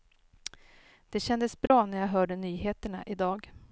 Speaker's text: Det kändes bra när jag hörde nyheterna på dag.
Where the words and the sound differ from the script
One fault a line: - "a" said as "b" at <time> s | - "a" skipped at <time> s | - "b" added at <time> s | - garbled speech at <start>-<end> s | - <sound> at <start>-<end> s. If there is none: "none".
- dropout at 1.7-1.7 s
- "på" said as "i" at 3.0 s